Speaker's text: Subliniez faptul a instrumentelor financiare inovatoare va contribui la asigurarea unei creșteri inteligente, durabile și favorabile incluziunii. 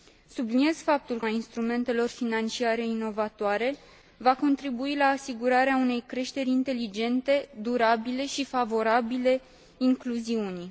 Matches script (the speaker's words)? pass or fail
pass